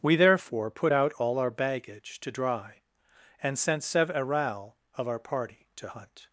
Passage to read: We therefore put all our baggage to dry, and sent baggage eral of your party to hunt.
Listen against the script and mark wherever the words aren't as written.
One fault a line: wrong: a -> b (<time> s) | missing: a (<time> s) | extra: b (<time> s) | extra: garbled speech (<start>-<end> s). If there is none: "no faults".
extra: out (0.9 s)
wrong: baggage -> sev (3.8 s)
wrong: your -> our (5.1 s)